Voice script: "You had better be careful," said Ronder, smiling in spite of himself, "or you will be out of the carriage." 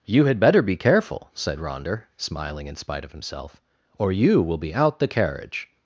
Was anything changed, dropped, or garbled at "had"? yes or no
no